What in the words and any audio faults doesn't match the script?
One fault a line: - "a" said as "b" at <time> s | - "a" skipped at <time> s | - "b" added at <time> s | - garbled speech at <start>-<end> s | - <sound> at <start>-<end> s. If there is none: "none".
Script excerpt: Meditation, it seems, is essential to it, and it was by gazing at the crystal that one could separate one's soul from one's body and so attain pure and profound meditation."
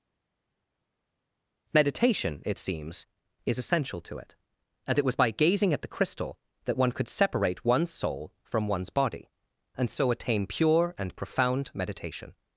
none